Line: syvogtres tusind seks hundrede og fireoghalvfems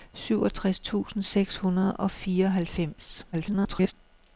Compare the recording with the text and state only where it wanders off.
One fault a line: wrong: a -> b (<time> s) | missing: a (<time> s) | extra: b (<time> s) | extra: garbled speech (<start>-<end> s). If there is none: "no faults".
extra: garbled speech (3.3-3.9 s)